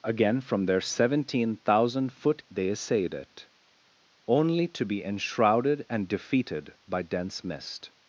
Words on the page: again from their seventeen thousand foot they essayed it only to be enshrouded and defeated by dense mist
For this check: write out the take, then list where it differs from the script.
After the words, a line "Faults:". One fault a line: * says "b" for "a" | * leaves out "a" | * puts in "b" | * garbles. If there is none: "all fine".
again from their seventeen thousand foot they essayed it only to be enshrouded and defeated by dense mist
Faults:
all fine